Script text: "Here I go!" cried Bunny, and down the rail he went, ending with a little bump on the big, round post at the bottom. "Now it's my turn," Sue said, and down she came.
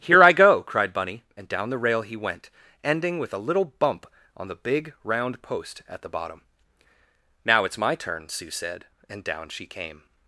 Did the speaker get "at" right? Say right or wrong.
right